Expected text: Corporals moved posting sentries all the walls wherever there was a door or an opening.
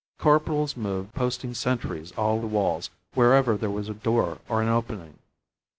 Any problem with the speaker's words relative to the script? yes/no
no